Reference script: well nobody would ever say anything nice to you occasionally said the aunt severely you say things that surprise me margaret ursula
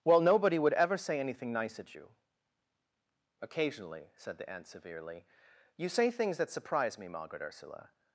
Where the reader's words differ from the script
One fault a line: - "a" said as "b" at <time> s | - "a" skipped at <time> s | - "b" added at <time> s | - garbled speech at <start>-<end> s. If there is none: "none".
- "to" said as "at" at 1.8 s